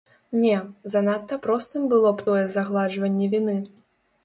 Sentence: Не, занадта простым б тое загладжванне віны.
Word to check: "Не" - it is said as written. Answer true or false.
true